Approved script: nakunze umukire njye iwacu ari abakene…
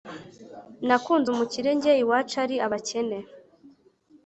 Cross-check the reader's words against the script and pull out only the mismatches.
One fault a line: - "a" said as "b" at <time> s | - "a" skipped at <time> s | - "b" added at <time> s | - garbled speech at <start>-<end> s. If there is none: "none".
none